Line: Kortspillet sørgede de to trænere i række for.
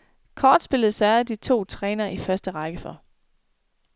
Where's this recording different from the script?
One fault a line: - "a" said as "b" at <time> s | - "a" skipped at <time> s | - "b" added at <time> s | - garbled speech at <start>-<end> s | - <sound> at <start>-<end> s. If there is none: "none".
- "første" added at 2.2 s